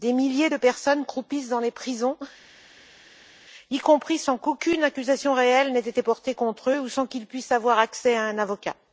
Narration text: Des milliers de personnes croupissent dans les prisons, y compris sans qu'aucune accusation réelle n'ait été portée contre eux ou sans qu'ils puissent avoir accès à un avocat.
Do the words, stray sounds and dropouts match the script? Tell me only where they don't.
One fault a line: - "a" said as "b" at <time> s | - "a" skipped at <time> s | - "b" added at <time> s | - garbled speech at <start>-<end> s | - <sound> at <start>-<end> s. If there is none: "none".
none